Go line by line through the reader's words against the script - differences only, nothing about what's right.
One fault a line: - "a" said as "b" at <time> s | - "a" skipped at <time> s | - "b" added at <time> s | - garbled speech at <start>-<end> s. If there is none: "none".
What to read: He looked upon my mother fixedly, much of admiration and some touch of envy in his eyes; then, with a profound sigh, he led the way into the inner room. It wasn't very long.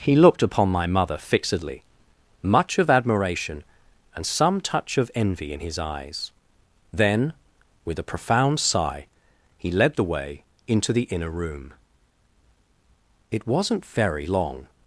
none